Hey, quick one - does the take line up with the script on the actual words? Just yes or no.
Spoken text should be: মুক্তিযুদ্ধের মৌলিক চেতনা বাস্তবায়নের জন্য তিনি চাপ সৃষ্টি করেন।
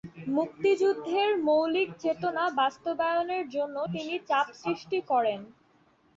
yes